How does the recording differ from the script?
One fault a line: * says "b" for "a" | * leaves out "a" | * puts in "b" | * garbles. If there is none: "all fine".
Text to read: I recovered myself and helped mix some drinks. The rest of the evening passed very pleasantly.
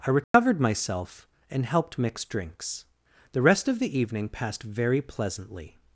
* leaves out "some"